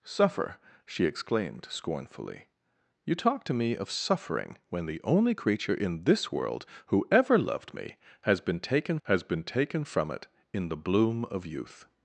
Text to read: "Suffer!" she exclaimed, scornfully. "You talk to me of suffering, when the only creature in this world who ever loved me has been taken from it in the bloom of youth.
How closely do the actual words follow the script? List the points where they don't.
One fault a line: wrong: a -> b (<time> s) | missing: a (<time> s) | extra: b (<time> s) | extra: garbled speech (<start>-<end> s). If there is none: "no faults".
extra: has been taken (9.0 s)